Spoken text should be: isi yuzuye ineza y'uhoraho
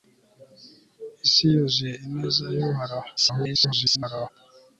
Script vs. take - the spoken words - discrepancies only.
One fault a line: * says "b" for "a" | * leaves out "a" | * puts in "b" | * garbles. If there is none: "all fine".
* garbles